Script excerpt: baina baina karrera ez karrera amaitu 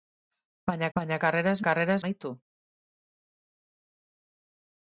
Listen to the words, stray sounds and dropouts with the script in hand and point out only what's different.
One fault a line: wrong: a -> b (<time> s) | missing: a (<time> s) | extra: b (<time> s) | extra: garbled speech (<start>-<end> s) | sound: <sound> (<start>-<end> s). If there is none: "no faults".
no faults